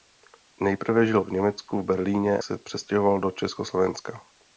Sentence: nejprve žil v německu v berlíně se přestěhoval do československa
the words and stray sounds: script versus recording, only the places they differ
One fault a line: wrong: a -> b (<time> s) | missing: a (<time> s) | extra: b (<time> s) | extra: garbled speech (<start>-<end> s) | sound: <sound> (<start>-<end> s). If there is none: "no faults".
no faults